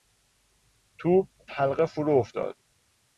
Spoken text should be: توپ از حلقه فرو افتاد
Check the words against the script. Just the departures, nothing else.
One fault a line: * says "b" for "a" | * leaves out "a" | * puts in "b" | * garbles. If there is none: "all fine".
* leaves out "از"